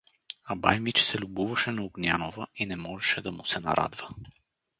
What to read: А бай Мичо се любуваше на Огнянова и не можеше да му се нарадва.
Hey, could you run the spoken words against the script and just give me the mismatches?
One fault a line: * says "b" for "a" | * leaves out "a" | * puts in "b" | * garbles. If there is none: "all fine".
all fine